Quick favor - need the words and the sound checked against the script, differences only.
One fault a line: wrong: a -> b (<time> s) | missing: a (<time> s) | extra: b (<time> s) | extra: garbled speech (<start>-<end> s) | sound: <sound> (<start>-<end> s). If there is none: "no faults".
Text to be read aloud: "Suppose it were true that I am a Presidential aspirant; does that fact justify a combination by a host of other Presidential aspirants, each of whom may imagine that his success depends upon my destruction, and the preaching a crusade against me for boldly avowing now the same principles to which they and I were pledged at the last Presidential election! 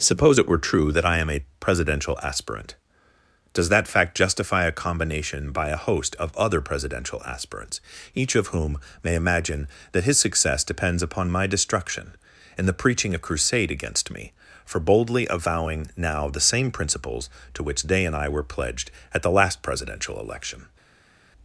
no faults